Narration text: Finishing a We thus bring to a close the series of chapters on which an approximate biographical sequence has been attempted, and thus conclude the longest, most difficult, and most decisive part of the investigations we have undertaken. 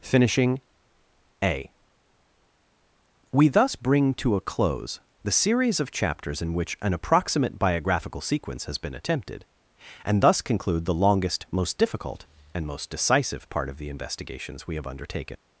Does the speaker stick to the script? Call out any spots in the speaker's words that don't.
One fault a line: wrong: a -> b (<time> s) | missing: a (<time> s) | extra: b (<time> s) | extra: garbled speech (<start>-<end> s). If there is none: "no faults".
wrong: on -> in (6.4 s)